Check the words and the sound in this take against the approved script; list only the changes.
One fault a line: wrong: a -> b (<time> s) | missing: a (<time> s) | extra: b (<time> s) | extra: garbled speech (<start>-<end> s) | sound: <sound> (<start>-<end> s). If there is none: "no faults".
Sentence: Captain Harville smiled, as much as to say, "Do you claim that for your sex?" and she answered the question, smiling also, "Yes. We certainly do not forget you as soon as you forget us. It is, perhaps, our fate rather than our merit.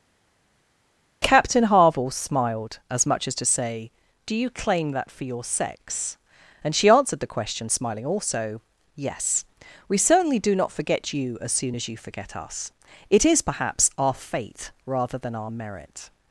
no faults